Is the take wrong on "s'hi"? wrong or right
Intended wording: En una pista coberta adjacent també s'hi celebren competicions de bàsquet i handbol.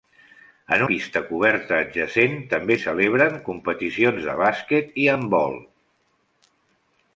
wrong